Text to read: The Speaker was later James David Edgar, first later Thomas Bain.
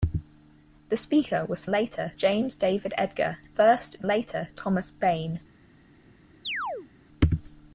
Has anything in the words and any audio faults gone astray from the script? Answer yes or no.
yes